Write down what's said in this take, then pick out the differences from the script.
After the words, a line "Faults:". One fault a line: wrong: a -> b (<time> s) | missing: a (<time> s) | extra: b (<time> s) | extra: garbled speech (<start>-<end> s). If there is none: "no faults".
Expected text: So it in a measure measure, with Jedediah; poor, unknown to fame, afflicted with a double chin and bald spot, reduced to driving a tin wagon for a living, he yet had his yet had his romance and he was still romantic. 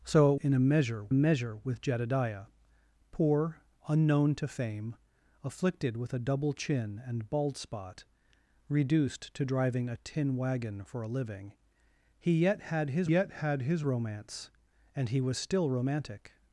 So it in a measure measure, with Jedediah; poor, unknown to fame, afflicted with a double chin and bald spot, reduced to driving a tin wagon for a living, he yet had his yet had his romance and he was still romantic.
Faults:
no faults